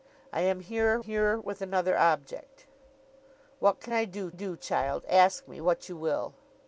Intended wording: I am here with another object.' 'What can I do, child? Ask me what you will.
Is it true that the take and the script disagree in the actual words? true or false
true